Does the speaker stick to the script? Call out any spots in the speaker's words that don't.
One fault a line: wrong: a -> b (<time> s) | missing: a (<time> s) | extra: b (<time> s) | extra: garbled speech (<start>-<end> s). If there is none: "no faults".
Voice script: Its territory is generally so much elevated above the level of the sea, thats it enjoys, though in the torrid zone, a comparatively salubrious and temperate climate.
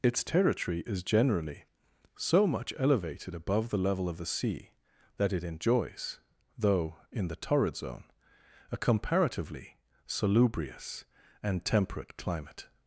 wrong: thats -> that (5.2 s)